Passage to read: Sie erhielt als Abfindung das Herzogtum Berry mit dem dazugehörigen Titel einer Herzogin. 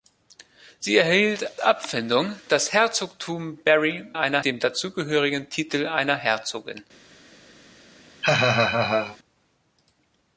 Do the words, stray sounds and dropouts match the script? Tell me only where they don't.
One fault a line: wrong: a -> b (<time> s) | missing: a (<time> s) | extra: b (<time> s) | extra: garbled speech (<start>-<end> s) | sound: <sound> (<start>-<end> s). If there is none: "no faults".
missing: als (1.6 s)
wrong: mit -> einer (4.1 s)
sound: laugh (8.2-9.2 s)